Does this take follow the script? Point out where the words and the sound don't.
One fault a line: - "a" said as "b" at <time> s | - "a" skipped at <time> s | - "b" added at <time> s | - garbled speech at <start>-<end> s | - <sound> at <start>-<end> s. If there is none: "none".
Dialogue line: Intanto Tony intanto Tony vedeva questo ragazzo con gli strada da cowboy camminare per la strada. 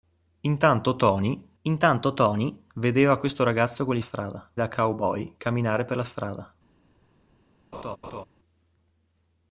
- laugh at 7.7-8.3 s